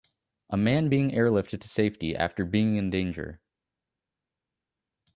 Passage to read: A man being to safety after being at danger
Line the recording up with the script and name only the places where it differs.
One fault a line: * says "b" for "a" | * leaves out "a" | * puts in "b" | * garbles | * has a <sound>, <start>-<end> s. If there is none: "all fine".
* puts in "airlifted"
* says "in" for "at"